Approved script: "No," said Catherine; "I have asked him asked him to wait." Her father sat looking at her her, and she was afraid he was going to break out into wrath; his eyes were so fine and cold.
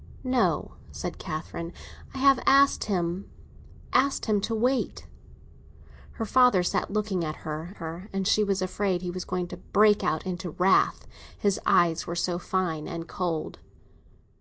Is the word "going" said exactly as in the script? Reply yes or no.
yes